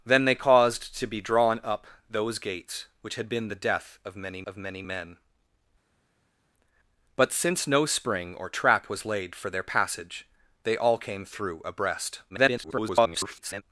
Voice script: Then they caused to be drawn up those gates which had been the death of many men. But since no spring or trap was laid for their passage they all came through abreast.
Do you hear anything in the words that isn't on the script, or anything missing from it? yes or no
yes